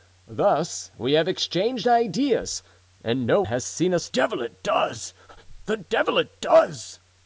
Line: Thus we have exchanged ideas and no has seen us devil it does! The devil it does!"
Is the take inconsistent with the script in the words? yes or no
no